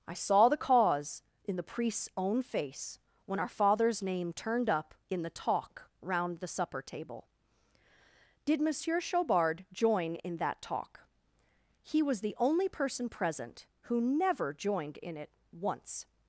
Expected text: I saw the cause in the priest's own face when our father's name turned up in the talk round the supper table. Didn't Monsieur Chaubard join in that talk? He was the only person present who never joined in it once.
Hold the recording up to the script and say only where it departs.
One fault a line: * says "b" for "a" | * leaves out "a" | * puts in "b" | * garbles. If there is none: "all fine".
* says "Did" for "Didn't"